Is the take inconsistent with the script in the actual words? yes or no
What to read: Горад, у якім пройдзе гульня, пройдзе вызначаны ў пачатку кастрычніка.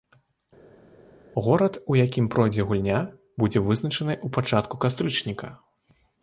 yes